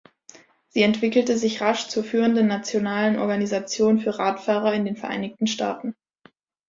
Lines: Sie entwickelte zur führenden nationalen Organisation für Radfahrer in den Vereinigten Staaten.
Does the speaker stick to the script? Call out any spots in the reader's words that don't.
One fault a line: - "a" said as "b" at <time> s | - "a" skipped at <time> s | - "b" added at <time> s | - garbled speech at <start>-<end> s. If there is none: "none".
- "sich rasch" added at 1.4 s